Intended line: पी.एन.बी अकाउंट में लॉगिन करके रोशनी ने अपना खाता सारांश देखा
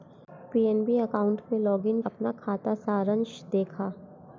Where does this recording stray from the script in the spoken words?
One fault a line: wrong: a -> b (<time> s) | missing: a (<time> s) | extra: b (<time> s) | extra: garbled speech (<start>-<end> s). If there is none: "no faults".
missing: करके रोशनी ने (2.0 s)